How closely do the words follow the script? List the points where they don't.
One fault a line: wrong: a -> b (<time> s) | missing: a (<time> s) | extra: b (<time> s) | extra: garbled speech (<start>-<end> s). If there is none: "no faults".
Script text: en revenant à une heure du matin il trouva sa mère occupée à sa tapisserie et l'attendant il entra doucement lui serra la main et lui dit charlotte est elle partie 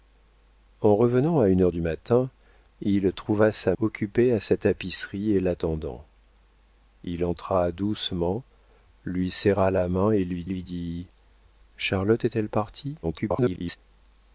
missing: mère (3.8 s)
extra: lui (10.4 s)
extra: garbled speech (13.0-13.8 s)